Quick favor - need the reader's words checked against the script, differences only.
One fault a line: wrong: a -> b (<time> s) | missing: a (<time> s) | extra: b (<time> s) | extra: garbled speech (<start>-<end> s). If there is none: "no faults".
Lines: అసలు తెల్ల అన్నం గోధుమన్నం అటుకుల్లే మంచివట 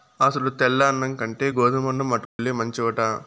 extra: కంటే (1.1 s)